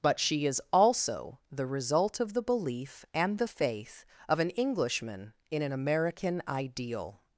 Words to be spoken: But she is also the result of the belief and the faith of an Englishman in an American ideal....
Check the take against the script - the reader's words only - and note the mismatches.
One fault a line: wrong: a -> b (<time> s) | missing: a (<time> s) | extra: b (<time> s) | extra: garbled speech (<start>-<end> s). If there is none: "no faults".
no faults